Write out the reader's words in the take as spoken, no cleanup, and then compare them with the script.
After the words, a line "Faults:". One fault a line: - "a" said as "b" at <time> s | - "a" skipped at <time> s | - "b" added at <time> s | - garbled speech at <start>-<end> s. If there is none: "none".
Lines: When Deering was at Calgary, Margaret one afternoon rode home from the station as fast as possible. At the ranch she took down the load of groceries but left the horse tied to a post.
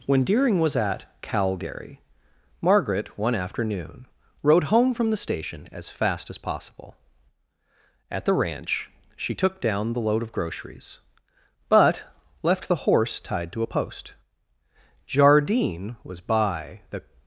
When Deering was at Calgary, Margaret one afternoon rode home from the station as fast as possible. At the ranch she took down the load of groceries but left the horse tied to a post. Jardine was by the
Faults:
- "Jardine was by the" added at 15.4 s